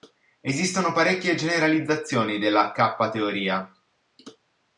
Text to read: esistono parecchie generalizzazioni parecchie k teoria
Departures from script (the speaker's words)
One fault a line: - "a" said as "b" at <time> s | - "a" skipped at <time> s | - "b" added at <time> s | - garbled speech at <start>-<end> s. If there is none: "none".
- "parecchie" said as "della" at 2.4 s